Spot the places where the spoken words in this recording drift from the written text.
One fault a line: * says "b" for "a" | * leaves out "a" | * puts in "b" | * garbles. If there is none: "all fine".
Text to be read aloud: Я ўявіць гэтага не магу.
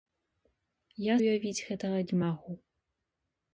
all fine